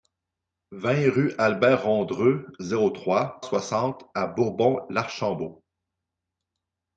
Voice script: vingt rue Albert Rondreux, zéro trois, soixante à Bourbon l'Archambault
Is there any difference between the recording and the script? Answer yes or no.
no